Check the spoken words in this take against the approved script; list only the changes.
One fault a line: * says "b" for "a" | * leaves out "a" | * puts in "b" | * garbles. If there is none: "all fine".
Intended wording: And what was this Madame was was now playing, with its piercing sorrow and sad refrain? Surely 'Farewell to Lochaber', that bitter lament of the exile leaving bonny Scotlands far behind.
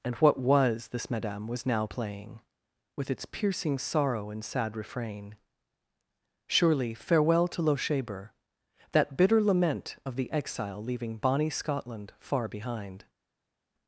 * leaves out "was"
* says "Scotland" for "Scotlands"